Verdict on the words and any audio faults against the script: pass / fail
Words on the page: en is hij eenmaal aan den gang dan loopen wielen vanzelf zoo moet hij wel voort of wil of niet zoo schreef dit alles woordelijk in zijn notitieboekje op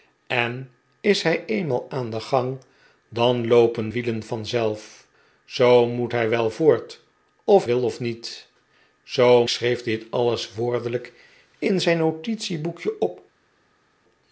pass